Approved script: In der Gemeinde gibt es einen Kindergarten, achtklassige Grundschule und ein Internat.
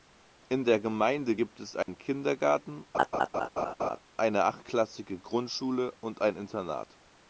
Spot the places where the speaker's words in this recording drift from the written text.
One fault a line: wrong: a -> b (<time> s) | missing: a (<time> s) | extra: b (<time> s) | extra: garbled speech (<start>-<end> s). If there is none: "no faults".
extra: eine (4.2 s)